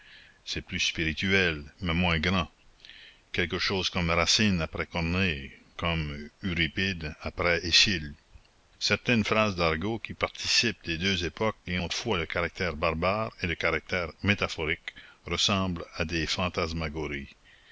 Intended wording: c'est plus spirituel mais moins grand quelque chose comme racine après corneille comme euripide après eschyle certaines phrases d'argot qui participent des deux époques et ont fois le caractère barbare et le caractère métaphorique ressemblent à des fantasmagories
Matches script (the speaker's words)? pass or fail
pass